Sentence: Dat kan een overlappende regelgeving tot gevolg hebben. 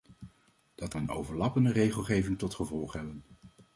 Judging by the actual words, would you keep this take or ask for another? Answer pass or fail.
fail